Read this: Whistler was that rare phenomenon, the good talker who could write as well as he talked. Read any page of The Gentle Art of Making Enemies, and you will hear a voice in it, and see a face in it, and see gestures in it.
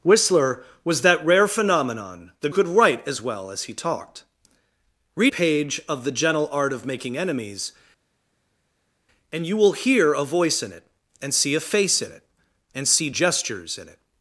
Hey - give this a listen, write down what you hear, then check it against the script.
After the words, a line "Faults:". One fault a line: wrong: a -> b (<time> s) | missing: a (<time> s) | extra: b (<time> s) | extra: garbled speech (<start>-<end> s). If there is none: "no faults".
Whistler was that rare phenomenon, the could write as well as he talked. Read page of The Gentle Art of Making Enemies, and you will hear a voice in it, and see a face in it, and see gestures in it.
Faults:
missing: good talker who (2.5 s)
missing: any (5.3 s)